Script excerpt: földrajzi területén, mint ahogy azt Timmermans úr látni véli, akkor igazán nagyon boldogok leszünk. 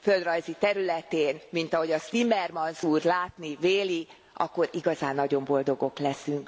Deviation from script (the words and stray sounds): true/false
false